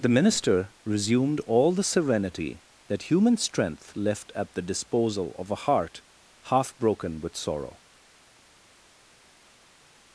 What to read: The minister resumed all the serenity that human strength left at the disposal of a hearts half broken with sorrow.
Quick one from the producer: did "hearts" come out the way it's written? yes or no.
no